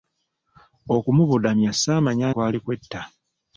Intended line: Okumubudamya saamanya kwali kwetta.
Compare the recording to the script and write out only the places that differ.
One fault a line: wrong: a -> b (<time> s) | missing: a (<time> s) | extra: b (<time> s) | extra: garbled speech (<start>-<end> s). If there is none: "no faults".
no faults